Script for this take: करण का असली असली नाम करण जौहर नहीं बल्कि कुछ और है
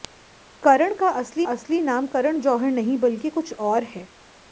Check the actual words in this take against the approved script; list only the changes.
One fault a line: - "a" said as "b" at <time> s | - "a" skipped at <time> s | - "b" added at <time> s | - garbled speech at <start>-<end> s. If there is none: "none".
none